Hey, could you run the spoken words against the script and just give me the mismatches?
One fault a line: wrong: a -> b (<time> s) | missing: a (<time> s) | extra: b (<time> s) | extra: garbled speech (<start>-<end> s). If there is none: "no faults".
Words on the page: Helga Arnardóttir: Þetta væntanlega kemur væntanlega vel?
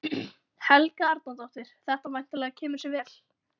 wrong: væntanlega -> sér (2.9 s)